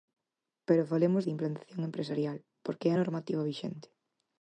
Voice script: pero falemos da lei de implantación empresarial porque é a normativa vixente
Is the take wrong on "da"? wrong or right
wrong